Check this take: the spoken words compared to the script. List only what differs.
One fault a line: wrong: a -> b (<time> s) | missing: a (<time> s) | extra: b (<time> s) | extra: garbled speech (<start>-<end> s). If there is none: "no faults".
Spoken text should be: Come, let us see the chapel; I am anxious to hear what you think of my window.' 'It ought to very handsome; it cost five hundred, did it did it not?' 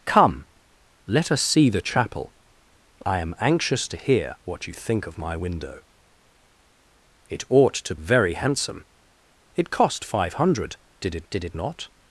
no faults